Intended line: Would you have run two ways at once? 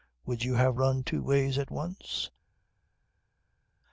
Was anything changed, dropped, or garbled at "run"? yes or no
no